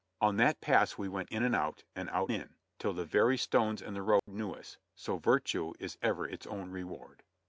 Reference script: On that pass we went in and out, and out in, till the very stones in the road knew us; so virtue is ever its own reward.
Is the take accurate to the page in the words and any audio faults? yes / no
no